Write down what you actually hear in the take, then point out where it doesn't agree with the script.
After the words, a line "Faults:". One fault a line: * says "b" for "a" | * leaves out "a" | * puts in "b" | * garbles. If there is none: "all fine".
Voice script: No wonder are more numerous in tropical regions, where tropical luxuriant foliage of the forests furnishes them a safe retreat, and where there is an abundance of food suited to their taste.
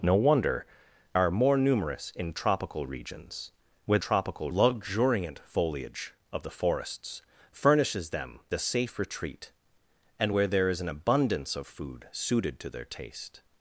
No wonder are more numerous in tropical regions, where tropical luxuriant foliage of the forests furnishes them a safe retreat, and where there is an abundance of food suited to their taste.
Faults:
all fine